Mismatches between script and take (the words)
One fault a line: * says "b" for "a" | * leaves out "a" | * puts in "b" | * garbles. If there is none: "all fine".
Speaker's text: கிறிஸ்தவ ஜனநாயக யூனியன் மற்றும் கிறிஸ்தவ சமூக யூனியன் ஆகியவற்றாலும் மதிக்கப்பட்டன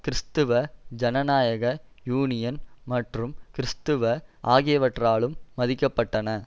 * leaves out "சமூக யூனியன்"